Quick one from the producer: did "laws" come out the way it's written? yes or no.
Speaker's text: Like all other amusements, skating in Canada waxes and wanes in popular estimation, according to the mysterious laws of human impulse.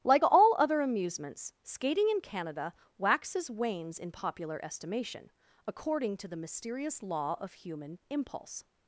no